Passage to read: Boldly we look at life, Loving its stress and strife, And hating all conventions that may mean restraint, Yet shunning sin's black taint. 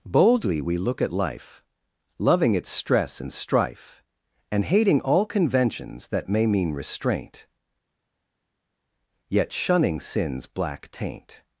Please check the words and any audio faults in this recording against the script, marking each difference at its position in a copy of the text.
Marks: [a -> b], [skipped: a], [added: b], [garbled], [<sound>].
Boldly we look at life, Loving its stress and strife, And hating all conventions that may mean restraint, Yet shunning sin's black taint.